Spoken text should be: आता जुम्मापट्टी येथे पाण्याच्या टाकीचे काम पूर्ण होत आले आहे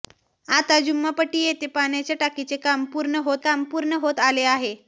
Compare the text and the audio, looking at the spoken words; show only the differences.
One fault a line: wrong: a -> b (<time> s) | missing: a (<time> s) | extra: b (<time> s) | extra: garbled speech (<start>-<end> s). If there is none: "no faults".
extra: काम पूर्ण होत (3.4 s)